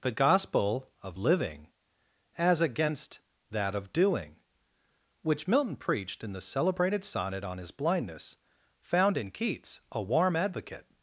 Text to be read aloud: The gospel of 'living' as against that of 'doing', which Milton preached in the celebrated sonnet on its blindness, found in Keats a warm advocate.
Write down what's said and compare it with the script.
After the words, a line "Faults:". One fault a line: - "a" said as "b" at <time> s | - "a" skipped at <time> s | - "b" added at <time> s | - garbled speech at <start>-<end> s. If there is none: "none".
The gospel of 'living' as against that of 'doing', which Milton preached in the celebrated sonnet on his blindness, found in Keats a warm advocate.
Faults:
- "its" said as "his" at 7.6 s